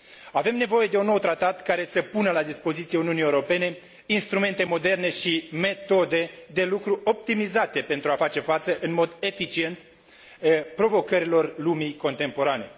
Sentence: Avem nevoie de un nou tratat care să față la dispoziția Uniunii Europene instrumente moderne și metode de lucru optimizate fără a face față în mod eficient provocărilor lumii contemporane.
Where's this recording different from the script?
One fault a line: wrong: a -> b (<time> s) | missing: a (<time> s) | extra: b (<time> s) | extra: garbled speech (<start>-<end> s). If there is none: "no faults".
wrong: față -> pună (2.0 s)
wrong: fără -> pentru (7.8 s)